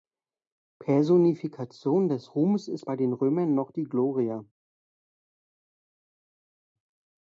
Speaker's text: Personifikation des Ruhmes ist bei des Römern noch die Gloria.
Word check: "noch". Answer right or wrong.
right